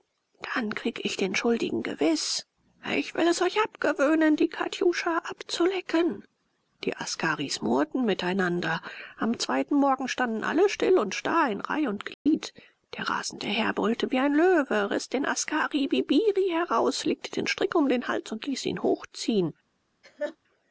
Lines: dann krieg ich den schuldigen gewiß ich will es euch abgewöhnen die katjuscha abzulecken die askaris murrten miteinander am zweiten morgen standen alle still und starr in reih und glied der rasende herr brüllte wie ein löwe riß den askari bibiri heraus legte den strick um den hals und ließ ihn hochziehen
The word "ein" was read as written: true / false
true